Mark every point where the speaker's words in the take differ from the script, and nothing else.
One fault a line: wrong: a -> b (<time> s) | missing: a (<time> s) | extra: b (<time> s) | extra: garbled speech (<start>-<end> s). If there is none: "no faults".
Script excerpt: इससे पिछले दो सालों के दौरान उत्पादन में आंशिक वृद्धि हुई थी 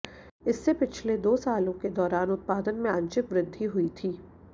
no faults